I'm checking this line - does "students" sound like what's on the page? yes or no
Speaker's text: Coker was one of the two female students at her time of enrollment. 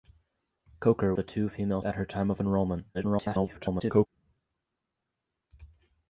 no